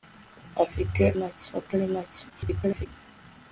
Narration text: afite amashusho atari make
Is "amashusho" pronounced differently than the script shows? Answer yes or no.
yes